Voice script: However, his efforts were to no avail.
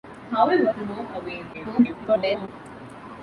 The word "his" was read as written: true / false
false